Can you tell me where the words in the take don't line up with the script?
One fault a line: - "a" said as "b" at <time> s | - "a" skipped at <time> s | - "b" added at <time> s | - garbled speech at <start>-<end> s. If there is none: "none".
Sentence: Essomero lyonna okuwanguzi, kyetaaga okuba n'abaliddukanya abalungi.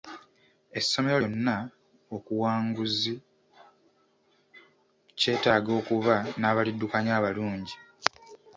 none